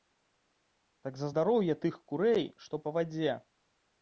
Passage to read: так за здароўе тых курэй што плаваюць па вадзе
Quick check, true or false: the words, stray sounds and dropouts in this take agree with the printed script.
false